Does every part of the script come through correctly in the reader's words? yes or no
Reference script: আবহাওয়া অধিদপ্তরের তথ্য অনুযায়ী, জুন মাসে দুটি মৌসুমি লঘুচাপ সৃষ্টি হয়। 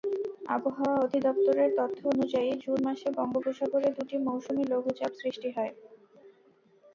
no